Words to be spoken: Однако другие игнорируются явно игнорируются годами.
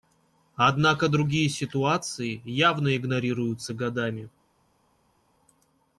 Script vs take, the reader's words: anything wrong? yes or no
yes